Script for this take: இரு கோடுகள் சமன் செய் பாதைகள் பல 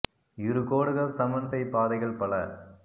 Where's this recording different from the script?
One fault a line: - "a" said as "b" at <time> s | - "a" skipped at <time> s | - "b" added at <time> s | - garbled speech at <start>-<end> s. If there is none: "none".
none